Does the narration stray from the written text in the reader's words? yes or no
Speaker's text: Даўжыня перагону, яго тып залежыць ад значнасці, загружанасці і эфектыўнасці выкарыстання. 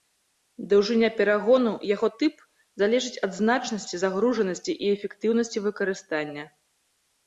no